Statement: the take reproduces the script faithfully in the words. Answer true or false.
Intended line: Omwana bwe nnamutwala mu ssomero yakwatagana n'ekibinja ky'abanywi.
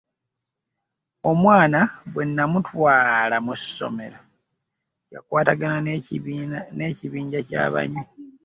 true